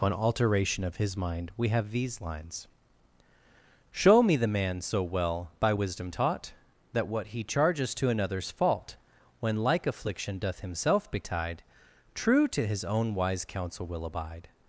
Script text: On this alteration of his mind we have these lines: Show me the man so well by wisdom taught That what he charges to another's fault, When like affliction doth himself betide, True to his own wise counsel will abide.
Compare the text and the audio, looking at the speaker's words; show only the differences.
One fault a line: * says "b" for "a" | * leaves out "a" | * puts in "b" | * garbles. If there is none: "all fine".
* leaves out "this"